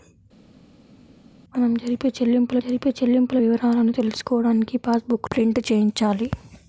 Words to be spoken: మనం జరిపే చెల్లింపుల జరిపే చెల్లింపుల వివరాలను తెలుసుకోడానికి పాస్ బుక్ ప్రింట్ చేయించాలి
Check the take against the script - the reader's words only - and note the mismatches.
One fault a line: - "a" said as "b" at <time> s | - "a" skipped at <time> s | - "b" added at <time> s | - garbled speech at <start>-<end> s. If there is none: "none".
none